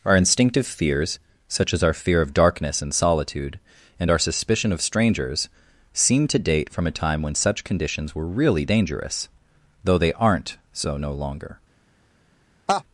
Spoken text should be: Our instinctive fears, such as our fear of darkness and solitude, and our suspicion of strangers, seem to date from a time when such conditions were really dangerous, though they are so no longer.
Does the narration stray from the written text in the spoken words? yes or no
yes